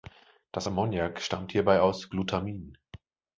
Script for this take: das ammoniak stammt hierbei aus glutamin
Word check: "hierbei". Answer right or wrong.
right